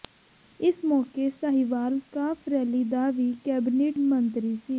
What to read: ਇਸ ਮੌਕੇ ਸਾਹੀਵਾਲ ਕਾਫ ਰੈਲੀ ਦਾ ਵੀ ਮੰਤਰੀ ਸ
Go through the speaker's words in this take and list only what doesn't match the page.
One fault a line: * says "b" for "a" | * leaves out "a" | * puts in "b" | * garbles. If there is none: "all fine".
* puts in "ਕੈਬਨਿਟ"